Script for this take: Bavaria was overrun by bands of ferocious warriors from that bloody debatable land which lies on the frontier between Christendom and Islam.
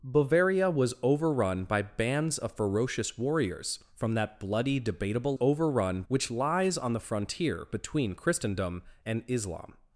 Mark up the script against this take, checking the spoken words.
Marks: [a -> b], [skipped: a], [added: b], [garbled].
Bavaria was overrun by bands of ferocious warriors from that bloody debatable [land -> overrun] which lies on the frontier between Christendom and Islam.